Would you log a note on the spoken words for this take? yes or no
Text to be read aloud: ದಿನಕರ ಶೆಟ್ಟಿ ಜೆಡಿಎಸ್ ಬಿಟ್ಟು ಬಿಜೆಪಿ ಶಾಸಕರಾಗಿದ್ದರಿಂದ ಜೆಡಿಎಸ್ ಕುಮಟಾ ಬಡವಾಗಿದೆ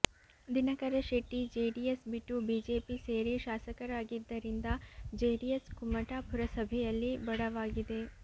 yes